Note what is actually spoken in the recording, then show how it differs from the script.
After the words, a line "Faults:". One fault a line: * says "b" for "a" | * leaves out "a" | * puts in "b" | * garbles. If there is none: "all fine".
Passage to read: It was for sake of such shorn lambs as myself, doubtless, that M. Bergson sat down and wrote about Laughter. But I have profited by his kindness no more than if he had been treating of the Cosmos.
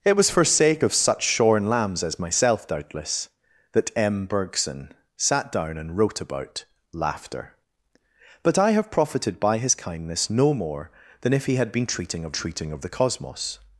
It was for sake of such shorn lambs as myself, doubtless, that M. Bergson sat down and wrote about Laughter. But I have profited by his kindness no more than if he had been treating of treating of the Cosmos.
Faults:
* puts in "treating of"